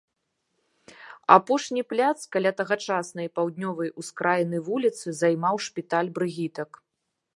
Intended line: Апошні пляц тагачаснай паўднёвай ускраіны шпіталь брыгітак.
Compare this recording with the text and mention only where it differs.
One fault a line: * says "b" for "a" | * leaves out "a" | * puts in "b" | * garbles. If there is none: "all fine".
* puts in "каля"
* puts in "вуліцы займаў"